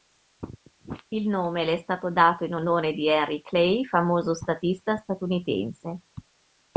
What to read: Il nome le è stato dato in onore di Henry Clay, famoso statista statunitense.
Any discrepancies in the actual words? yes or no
no